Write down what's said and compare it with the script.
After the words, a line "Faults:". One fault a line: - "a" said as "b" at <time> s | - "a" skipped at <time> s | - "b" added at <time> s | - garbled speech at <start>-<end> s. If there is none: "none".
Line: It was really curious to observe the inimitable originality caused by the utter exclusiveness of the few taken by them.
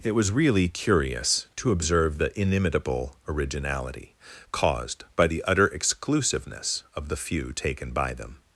It was really curious to observe the inimitable originality caused by the utter exclusiveness of the few taken by them.
Faults:
none